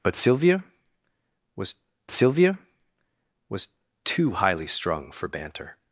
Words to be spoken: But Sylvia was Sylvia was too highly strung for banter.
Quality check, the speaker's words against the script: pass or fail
pass